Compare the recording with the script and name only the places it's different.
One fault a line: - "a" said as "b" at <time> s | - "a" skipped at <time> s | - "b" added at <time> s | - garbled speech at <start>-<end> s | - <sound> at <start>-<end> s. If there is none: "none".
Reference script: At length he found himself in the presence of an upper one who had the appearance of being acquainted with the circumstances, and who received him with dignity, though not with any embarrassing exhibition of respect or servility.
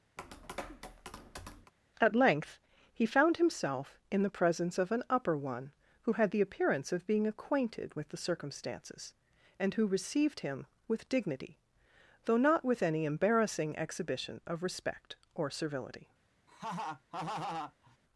- tap at 0.2-1.7 s
- laugh at 16.5-18.0 s